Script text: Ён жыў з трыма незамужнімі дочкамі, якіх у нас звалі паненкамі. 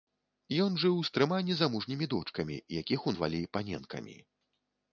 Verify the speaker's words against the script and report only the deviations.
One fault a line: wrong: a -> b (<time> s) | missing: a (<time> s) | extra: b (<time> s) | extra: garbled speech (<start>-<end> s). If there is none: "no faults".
missing: нас (3.1 s)